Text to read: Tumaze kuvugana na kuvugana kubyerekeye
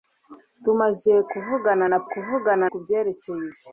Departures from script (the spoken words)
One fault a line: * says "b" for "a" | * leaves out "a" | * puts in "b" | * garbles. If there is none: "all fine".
all fine